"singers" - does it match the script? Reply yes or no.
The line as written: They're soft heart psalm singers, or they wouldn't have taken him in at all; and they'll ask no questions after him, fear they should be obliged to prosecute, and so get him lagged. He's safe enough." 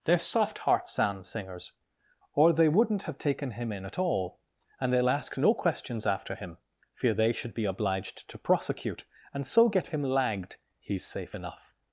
yes